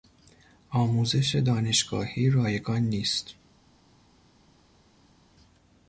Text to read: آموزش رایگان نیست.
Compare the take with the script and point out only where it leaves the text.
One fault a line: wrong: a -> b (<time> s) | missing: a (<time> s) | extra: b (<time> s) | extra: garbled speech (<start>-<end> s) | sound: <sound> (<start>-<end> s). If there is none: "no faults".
extra: دانشگاهی (1.4 s)